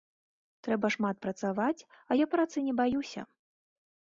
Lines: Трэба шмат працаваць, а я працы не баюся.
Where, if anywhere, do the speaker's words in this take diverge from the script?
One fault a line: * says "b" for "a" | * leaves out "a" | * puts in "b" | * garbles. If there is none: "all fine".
all fine